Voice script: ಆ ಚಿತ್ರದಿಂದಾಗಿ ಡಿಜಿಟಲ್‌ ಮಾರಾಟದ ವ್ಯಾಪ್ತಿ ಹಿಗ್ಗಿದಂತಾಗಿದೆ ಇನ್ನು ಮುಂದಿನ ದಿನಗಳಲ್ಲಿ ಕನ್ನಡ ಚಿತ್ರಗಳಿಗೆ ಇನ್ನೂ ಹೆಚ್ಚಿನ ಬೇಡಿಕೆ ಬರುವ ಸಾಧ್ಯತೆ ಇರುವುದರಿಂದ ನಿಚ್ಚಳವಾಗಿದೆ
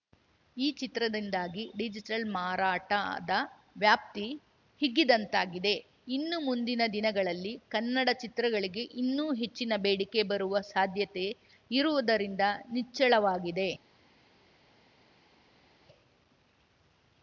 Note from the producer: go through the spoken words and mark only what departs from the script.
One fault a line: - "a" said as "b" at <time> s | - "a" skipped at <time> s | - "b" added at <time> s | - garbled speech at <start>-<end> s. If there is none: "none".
- "ಆ" said as "ಈ" at 0.6 s